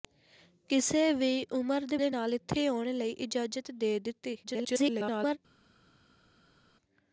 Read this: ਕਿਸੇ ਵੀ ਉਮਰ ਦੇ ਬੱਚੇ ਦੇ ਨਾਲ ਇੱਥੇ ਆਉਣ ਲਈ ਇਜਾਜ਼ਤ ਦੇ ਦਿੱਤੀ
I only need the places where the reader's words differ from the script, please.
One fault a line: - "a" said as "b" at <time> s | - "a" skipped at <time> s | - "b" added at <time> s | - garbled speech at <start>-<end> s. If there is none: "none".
- "ਬੱਚੇ" skipped at 2.0 s
- garbled speech at 4.4-5.4 s